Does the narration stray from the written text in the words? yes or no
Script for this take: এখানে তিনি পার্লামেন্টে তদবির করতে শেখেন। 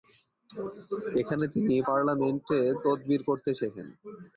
no